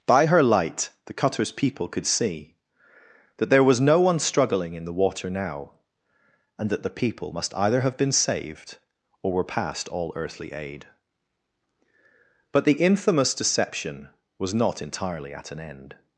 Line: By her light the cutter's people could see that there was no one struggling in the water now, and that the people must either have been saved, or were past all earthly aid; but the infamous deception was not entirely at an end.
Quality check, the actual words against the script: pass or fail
pass